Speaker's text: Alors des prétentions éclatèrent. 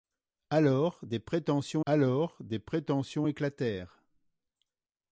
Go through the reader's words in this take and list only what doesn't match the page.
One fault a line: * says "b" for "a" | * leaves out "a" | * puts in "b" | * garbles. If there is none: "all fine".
* puts in "alors des prétentions"